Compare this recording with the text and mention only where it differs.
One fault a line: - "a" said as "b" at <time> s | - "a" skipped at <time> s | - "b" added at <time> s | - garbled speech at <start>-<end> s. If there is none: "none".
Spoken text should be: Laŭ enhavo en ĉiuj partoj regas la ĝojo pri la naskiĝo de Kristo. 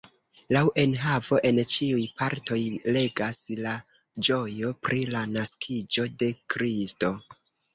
none